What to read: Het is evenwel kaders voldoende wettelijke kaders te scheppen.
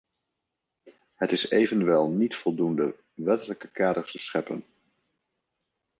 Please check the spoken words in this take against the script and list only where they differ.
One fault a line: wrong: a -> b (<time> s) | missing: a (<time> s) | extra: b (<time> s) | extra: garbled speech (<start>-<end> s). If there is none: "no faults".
wrong: kaders -> niet (2.1 s)